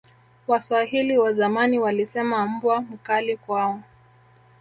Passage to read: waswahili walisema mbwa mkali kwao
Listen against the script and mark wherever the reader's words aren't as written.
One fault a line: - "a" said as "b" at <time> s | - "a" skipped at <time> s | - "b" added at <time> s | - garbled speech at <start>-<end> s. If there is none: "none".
- "wa zamani" added at 1.2 s